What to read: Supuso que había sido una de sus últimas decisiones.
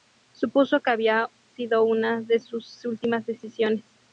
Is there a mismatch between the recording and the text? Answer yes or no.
no